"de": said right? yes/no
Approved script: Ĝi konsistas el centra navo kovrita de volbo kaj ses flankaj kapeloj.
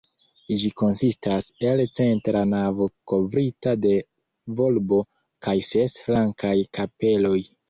yes